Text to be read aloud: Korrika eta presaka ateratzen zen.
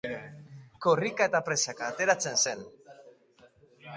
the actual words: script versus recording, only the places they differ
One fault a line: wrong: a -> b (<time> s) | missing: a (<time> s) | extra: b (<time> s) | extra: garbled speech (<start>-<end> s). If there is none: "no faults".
no faults